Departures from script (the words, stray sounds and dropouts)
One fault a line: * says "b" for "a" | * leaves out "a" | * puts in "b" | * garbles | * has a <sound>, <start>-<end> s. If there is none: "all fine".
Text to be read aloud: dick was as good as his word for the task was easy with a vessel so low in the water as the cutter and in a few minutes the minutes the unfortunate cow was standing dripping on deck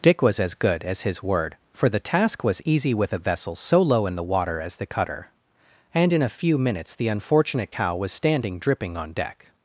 * leaves out "minutes the"